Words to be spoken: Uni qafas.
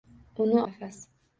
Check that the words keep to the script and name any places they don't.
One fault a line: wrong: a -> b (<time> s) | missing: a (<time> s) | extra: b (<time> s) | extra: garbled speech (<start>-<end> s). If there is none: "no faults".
no faults